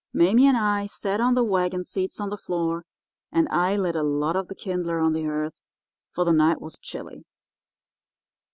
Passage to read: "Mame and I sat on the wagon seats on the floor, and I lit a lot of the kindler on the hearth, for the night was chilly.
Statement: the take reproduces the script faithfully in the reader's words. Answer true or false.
true